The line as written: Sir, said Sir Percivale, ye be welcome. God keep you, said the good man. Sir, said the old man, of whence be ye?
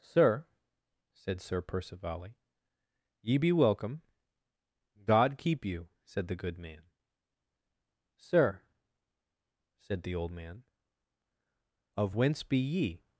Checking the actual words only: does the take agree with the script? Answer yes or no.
yes